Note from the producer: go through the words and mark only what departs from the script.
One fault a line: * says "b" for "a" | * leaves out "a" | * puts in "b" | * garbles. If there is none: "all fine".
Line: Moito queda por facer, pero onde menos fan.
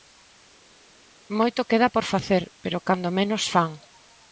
* says "cando" for "onde"